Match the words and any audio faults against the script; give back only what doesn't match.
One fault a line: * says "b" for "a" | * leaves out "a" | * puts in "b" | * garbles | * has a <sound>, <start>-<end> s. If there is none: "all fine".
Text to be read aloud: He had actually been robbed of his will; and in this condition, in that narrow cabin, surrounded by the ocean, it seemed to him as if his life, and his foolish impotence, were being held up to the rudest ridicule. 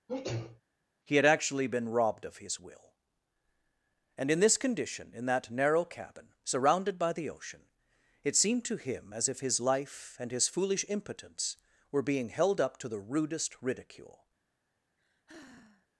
* has a sneeze, 0.1-0.6 s
* has a sigh, 15.0-15.9 s